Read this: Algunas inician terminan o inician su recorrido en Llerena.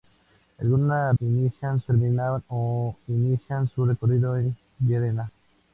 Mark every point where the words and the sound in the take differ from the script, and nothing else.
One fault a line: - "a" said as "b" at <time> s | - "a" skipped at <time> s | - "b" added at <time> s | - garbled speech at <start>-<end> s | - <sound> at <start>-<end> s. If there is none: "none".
none